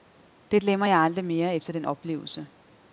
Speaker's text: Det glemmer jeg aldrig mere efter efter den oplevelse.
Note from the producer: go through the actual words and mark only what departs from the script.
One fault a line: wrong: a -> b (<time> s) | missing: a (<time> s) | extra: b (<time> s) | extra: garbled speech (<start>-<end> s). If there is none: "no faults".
missing: efter (1.7 s)